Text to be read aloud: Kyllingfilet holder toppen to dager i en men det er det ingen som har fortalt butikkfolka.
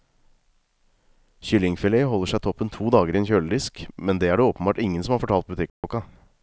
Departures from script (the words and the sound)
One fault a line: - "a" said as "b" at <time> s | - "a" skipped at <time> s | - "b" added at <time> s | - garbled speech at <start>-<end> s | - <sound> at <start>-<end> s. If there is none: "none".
- "seg" added at 2.3 s
- "kjøledisk" added at 3.3 s
- "åpenbart" added at 4.5 s
- dropout at 5.7-5.8 s